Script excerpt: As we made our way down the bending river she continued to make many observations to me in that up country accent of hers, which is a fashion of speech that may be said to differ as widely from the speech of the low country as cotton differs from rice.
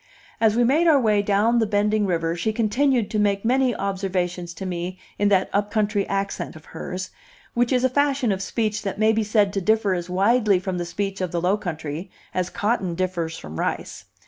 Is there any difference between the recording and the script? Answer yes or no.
no